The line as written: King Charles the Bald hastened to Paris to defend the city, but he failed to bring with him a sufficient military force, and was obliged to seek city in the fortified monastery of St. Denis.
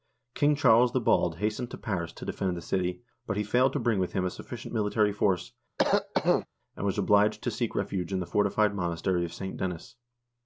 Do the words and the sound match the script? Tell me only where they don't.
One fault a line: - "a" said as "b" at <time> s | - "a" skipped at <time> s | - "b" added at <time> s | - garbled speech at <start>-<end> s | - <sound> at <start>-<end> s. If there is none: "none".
- cough at 5.8-6.5 s
- "city" said as "refuge" at 7.7 s